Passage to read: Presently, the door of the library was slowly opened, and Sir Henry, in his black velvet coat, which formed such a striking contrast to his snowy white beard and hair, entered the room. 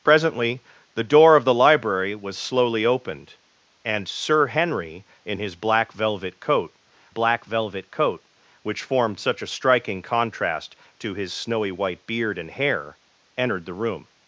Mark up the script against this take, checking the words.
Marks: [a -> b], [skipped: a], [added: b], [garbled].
Presently, the door of the library was slowly opened, and Sir Henry, in his black velvet coat, [added: black velvet coat] which formed such a striking contrast to his snowy white beard and hair, entered the room.